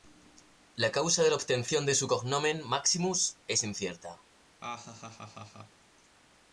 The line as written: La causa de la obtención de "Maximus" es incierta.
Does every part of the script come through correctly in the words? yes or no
no